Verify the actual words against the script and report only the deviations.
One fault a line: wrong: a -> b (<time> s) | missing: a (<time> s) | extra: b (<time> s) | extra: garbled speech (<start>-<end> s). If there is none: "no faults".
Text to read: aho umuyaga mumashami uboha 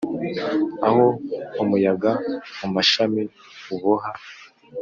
no faults